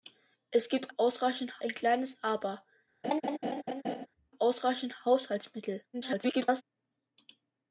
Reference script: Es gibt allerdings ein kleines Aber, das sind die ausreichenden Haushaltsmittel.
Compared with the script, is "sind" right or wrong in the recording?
wrong